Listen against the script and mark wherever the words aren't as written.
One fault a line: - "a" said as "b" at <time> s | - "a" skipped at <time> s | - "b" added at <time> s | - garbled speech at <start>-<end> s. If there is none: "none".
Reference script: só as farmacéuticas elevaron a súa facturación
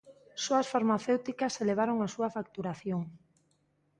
none